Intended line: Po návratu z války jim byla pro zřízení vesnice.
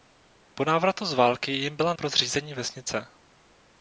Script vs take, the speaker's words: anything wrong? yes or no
no